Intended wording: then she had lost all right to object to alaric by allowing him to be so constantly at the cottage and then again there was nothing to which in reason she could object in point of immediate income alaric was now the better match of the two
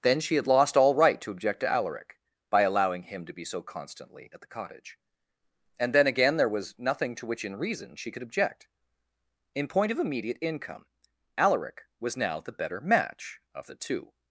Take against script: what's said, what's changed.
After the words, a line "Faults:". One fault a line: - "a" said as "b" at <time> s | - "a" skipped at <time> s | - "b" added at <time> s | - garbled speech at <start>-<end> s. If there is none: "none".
then she had lost all right to object to alaric by allowing him to be so constantly at the cottage and then again there was nothing to which in reason she could object in point of immediate income alaric was now the better match of the two
Faults:
none